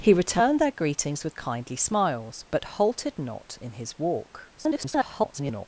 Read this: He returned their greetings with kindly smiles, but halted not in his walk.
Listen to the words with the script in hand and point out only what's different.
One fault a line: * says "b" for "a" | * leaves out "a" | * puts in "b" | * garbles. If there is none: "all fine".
* garbles